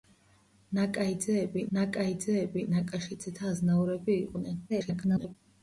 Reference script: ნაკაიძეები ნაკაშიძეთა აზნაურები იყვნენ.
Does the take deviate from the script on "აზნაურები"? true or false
false